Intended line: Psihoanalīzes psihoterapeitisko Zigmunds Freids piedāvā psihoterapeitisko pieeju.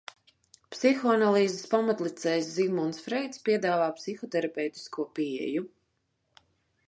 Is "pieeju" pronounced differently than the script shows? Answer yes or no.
no